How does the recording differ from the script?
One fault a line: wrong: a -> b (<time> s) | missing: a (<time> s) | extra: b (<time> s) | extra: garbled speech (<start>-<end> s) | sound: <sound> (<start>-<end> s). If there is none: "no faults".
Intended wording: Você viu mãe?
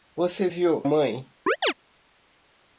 sound: chirp (1.5-1.7 s)